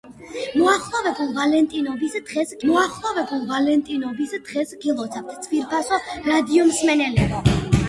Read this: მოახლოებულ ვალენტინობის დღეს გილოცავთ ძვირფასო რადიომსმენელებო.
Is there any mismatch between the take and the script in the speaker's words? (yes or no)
yes